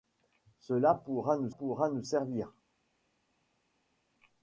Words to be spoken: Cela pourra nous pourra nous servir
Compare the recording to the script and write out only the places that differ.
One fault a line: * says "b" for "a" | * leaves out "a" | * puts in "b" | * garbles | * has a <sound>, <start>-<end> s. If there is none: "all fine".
all fine